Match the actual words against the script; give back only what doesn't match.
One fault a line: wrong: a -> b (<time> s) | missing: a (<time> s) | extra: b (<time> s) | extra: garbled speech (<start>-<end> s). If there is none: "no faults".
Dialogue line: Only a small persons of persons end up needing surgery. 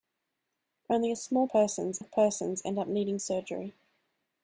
no faults